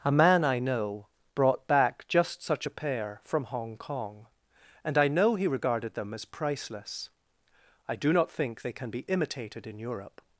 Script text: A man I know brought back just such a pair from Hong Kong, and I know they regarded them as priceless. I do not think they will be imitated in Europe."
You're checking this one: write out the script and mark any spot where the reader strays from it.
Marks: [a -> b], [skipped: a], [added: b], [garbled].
A man I know brought back just such a pair from Hong Kong, and I know [they -> he] regarded them as priceless. I do not think they [will -> can] be imitated in Europe."